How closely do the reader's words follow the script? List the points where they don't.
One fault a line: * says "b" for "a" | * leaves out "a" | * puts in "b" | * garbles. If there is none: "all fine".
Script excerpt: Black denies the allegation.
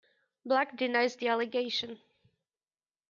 all fine